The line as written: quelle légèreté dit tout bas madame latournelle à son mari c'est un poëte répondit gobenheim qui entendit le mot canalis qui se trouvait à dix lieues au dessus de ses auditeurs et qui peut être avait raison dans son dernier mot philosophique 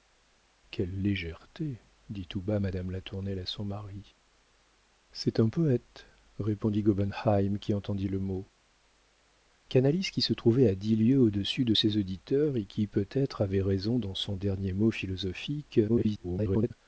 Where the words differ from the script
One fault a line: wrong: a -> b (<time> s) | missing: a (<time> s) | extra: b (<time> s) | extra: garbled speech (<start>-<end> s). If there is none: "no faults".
extra: garbled speech (15.9-16.7 s)